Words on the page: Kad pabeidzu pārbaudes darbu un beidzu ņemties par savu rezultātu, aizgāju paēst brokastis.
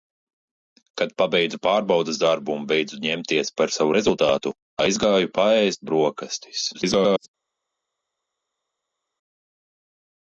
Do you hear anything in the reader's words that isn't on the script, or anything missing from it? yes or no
yes